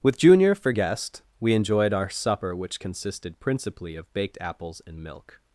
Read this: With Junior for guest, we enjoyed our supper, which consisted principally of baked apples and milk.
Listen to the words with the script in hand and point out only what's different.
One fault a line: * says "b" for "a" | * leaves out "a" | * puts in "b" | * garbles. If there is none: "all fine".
all fine